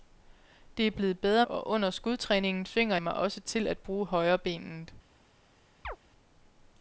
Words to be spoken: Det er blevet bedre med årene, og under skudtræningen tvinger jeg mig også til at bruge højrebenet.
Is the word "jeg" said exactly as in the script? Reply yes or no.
no